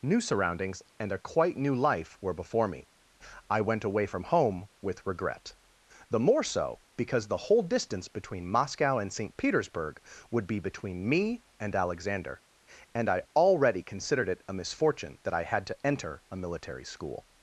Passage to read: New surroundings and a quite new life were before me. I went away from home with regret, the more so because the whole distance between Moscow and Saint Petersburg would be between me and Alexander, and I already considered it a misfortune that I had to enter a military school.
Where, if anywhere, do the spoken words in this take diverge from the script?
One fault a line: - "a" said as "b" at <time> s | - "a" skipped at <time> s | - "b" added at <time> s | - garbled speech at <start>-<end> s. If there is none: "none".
none